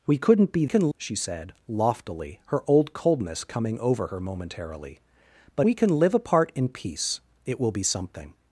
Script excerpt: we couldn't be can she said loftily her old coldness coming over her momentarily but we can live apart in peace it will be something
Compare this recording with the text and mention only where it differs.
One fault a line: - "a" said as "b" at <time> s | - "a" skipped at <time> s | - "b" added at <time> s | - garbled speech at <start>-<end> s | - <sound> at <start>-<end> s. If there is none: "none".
none